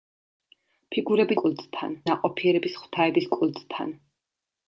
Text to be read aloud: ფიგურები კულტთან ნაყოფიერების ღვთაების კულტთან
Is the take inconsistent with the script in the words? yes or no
no